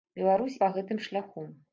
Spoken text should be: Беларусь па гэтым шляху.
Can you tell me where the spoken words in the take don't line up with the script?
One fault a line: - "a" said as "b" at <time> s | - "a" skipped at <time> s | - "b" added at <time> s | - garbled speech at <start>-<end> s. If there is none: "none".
none